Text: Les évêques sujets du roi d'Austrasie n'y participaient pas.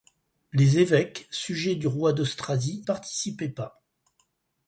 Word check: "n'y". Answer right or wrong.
wrong